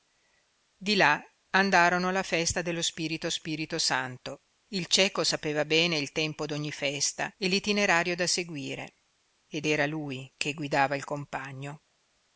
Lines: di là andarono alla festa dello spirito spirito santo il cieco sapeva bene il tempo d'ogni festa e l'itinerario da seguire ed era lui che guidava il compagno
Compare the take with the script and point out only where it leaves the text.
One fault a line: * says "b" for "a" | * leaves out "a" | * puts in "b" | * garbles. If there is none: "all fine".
all fine